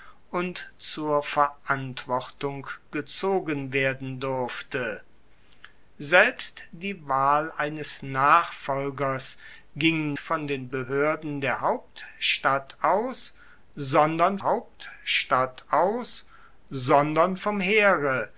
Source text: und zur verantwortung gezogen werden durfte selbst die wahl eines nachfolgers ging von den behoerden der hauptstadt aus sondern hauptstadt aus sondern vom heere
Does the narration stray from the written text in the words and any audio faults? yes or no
no